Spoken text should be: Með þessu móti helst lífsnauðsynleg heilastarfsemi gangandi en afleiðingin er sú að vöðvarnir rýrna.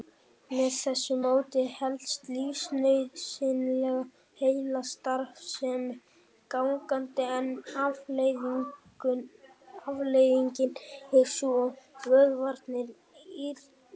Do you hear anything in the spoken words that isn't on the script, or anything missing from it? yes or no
no